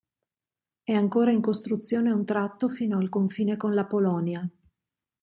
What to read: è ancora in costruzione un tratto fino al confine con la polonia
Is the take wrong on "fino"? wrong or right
right